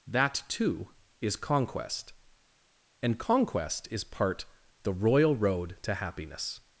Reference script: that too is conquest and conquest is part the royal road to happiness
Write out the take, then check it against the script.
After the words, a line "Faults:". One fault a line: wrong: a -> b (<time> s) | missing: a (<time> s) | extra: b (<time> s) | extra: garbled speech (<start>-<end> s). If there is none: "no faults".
that too is conquest and conquest is part the royal road to happiness
Faults:
no faults